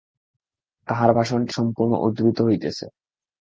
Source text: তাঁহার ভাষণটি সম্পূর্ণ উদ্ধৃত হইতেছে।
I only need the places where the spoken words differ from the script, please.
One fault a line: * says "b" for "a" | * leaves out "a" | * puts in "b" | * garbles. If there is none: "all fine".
all fine